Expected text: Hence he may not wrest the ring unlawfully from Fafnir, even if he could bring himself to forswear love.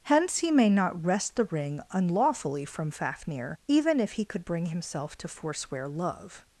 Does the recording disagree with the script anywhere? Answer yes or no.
no